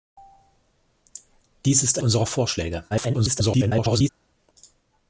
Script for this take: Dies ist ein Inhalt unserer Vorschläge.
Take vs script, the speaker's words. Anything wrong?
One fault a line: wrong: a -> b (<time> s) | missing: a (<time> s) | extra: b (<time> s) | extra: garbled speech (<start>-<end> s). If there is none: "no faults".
missing: ein Inhalt (2.0 s)
extra: garbled speech (2.9-4.1 s)